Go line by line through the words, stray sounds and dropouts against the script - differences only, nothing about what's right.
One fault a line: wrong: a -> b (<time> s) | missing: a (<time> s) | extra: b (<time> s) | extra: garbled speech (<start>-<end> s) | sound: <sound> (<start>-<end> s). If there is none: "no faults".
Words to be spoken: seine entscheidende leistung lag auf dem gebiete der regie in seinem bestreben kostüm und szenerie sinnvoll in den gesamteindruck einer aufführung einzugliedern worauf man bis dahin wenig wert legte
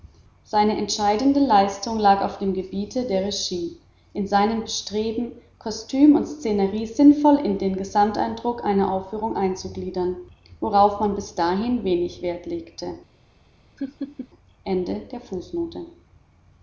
sound: laugh (13.8-14.3 s)